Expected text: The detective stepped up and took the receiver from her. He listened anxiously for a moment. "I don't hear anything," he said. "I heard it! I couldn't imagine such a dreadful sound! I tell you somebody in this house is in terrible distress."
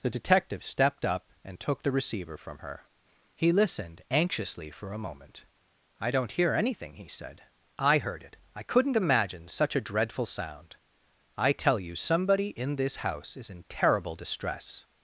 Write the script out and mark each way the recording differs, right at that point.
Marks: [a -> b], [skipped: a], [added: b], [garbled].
The detective stepped up and took the receiver from her. He listened anxiously for a moment. "I don't hear anything," he said. "I heard it! I couldn't imagine such a dreadful sound! I tell you somebody in this house is in terrible distress."